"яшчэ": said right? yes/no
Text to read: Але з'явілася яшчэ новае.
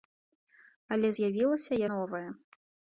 no